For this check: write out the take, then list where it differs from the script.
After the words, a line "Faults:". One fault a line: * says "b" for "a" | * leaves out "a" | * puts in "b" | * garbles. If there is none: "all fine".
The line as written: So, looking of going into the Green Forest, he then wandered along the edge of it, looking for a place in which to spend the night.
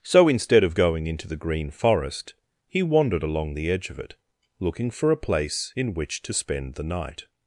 So, instead of going into the Green Forest, he wandered along the edge of it, looking for a place in which to spend the night.
Faults:
* says "instead" for "looking"
* leaves out "then"